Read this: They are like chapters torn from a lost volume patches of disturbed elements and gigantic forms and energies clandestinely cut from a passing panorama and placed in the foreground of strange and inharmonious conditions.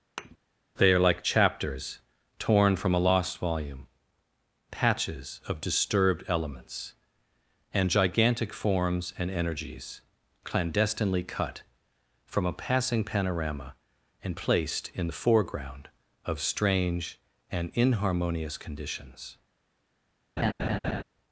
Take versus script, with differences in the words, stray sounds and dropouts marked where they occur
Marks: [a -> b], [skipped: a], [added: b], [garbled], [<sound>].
[thud] They are like chapters torn from a lost volume patches of disturbed elements and gigantic forms and energies clandestinely cut from a passing panorama and placed in the foreground of strange and inharmonious conditions. [laugh]